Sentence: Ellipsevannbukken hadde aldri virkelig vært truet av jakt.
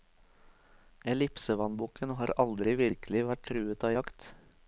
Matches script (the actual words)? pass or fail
fail